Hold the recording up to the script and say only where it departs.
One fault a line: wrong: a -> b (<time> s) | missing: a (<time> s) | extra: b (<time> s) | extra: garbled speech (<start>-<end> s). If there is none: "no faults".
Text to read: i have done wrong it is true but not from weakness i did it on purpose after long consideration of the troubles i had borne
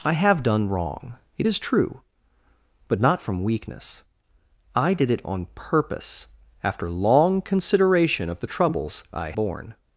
missing: had (9.3 s)